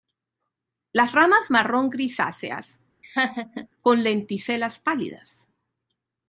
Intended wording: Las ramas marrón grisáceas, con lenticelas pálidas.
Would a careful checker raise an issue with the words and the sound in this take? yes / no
yes